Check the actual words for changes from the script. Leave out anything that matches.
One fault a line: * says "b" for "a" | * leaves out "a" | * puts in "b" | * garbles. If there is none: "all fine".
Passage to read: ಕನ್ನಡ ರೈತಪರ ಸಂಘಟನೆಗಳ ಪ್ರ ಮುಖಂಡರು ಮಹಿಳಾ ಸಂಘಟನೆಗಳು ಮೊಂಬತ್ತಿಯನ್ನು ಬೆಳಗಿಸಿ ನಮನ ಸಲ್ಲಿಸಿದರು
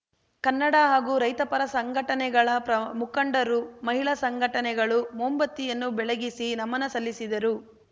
* puts in "ಹಾಗೂ"